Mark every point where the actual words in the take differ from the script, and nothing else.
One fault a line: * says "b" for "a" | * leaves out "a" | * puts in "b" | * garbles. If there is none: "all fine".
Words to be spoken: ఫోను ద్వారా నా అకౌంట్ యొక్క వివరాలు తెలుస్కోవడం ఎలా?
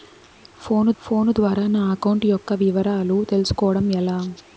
* puts in "ఫోను"